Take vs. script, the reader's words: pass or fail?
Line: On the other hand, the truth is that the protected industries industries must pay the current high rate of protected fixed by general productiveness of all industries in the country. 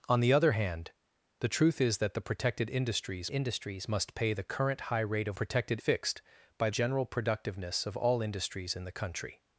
pass